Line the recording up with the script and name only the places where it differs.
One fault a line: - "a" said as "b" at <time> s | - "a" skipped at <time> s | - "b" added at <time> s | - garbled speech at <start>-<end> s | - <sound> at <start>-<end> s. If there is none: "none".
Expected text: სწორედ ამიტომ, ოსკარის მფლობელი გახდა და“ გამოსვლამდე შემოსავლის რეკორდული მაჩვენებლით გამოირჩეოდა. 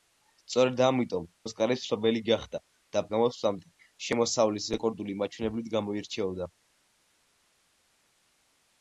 none